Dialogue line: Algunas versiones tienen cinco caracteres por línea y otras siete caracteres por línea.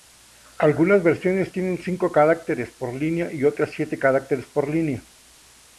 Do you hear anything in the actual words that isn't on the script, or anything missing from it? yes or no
no